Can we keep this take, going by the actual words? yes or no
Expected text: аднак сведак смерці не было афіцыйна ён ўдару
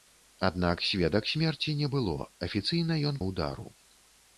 yes